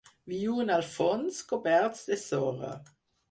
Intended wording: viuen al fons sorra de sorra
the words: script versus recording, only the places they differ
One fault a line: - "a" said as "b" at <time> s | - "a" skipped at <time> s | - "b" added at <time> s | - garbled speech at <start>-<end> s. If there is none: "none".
- "sorra" said as "coberts" at 1.5 s